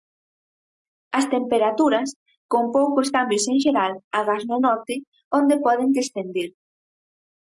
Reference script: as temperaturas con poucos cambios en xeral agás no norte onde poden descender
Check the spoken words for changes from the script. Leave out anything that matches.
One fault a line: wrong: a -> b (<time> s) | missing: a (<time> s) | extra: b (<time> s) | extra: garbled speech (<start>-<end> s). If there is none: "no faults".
no faults